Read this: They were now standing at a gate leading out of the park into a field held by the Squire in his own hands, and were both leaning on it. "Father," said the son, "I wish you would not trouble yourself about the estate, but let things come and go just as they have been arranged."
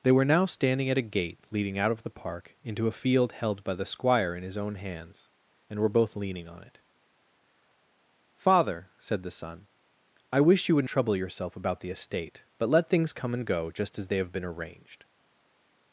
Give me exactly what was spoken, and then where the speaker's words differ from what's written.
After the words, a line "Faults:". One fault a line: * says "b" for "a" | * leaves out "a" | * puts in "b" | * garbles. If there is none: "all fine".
They were now standing at a gate leading out of the park into a field held by the Squire in his own hands, and were both leaning on it. "Father," said the son, "I wish you would trouble yourself about the estate, but let things come and go just as they have been arranged."
Faults:
* leaves out "not"